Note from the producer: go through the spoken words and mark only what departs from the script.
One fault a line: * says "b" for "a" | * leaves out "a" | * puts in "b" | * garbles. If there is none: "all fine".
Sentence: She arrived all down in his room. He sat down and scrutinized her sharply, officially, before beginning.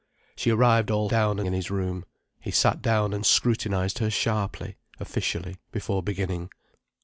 all fine